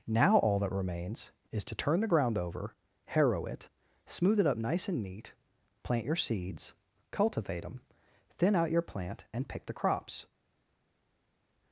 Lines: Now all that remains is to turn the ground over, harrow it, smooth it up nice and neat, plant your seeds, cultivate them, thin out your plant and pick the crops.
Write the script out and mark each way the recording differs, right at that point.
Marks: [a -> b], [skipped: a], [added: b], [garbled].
Now all that remains is to turn the ground over, harrow it, smooth it up nice and neat, plant your seeds, cultivate them, thin out your plant and pick the crops.